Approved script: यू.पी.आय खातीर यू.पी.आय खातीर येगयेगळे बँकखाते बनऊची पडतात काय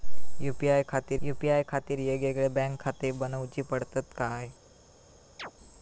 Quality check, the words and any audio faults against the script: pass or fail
fail